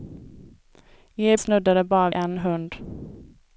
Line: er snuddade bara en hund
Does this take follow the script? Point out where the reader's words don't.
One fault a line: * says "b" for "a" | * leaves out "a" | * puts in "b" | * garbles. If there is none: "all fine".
all fine